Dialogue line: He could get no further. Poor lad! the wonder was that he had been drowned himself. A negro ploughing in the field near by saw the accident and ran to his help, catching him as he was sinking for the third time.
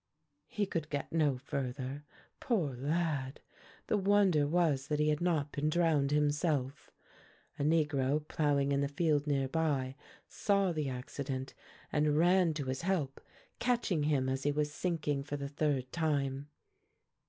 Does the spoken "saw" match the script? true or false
true